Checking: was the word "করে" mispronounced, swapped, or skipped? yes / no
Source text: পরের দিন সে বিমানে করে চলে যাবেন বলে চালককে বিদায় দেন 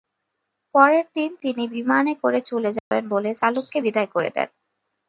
no